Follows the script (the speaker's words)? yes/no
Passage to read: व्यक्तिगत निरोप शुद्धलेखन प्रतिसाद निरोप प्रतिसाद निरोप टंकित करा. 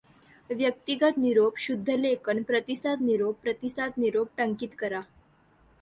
yes